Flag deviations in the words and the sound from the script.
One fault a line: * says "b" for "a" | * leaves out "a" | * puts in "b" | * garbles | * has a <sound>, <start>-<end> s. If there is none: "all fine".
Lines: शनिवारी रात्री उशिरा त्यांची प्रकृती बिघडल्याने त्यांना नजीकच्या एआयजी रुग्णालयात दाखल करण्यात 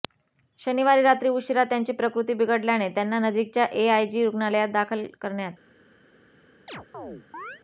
* has a chirp, 6.7-7.6 s